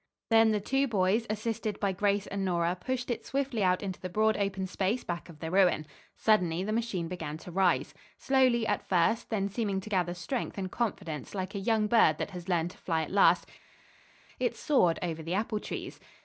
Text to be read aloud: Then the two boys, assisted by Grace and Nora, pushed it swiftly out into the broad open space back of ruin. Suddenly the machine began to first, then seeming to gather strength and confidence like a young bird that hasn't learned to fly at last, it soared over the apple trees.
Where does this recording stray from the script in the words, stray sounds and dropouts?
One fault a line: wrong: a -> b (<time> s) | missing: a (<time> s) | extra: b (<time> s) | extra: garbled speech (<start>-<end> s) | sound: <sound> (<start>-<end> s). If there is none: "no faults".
extra: the (5.4 s)
extra: rise Slowly at (7.5 s)
wrong: hasn't -> has (12.3 s)